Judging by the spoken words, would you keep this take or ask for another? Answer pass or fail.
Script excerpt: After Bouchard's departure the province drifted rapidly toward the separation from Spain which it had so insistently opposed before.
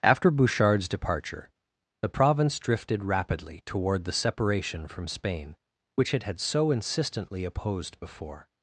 pass